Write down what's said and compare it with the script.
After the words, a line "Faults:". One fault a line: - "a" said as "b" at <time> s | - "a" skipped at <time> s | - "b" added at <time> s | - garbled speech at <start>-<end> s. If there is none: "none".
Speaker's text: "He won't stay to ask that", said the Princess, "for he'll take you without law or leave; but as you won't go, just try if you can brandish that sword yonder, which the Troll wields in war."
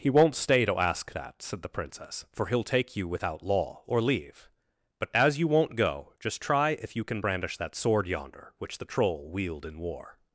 "He won't stay to ask that", said the Princess, "for he'll take you without law or leave; but as you won't go, just try if you can brandish that sword yonder, which the Troll wield in war."
Faults:
- "wields" said as "wield" at 9.3 s